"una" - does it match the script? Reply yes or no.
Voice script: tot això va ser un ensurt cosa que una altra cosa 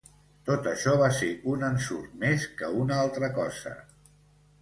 yes